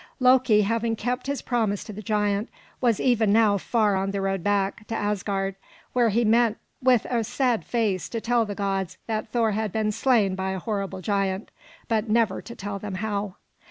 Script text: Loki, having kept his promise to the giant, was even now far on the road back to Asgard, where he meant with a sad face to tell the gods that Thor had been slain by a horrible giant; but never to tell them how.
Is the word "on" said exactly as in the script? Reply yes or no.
yes